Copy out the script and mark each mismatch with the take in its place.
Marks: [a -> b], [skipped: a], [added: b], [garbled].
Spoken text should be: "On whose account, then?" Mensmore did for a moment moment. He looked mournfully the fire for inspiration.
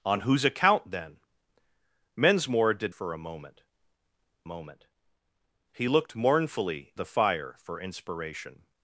"On whose account, then?" Mensmore did for a moment moment. He looked mournfully the fire for inspiration.